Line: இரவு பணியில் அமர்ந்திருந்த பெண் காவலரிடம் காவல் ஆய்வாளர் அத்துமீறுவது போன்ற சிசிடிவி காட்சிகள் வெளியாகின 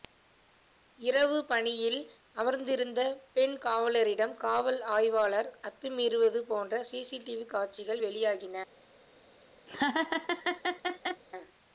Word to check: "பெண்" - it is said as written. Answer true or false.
true